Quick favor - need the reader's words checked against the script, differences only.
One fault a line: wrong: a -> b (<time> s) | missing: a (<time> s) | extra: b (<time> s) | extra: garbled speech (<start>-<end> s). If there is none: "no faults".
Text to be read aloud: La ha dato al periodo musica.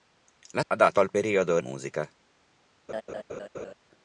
no faults